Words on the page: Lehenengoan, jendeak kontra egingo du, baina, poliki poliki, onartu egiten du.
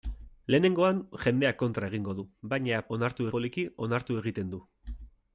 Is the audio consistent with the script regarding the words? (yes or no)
no